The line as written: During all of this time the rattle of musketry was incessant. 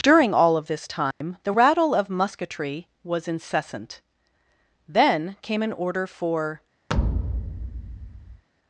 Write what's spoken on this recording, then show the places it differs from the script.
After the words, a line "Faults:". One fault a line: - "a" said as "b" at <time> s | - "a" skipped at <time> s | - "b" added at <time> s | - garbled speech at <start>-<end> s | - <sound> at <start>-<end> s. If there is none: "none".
During all of this time the rattle of musketry was incessant. Then came an order for
Faults:
- dropout at 1.1-1.2 s
- "Then came an order for" added at 4.9 s
- thud at 6.9-8.4 s